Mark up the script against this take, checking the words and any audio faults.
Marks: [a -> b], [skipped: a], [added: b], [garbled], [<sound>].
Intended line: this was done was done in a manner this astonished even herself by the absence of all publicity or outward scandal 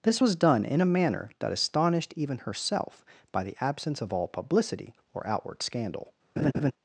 this was done [skipped: was done] in a manner [this -> that] astonished even herself by the absence of all publicity or outward scandal [laugh]